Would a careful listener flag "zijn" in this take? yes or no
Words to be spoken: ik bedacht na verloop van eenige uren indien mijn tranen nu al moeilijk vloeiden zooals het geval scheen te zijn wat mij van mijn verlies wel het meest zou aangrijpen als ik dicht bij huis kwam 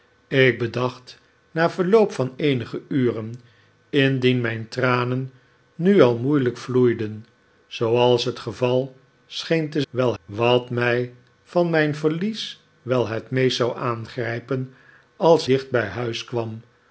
yes